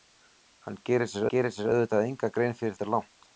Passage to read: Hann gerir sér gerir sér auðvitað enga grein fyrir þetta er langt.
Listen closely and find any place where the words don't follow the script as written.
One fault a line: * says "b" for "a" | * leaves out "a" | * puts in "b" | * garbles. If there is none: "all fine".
all fine